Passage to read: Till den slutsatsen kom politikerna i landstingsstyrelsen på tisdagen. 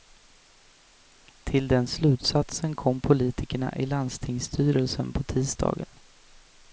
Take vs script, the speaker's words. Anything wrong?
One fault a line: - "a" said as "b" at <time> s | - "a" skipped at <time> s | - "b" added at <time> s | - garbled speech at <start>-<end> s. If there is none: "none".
none